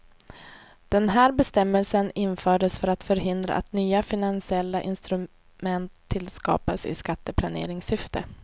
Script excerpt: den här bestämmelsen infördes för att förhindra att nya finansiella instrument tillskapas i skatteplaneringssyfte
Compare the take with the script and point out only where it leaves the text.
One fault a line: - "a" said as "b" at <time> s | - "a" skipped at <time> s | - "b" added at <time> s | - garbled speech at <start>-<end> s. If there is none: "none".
none